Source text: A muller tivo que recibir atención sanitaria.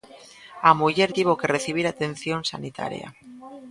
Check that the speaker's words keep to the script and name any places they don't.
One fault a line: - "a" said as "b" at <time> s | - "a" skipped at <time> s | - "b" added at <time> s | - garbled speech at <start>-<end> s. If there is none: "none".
none